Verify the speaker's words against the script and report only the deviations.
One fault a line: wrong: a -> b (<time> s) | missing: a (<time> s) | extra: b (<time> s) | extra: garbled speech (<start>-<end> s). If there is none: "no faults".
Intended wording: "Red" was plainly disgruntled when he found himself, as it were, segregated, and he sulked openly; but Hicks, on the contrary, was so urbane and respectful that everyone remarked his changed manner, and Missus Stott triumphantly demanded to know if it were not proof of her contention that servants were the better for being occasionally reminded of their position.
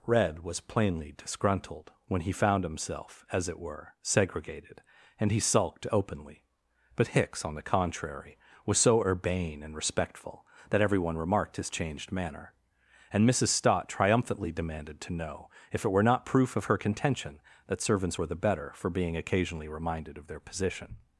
no faults